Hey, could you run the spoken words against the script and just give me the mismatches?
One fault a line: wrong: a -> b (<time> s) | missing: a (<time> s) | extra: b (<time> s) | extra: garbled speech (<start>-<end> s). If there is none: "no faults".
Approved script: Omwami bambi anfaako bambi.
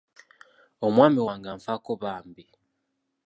wrong: bambi -> wange (1.3 s)